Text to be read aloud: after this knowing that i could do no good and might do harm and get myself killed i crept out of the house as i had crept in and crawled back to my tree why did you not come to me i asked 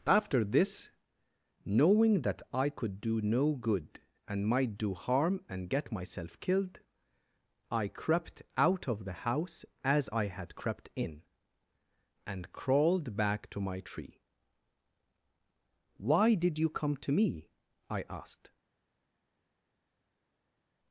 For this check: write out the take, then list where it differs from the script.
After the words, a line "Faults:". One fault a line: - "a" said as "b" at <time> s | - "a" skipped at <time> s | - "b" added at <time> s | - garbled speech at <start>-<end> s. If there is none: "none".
after this knowing that i could do no good and might do harm and get myself killed i crept out of the house as i had crept in and crawled back to my tree why did you come to me i asked
Faults:
- "not" skipped at 16.7 s